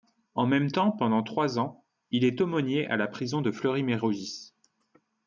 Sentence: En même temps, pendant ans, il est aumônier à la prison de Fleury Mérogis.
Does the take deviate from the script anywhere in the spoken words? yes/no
yes